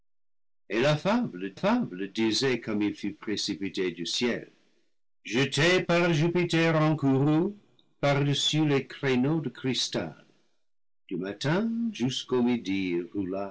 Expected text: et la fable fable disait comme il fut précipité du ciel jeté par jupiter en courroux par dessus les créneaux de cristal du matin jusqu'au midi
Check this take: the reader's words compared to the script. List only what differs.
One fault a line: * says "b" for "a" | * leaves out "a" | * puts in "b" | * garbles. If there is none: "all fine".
all fine